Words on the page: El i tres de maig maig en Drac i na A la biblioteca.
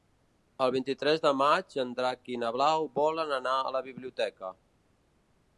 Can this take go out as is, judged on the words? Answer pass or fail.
fail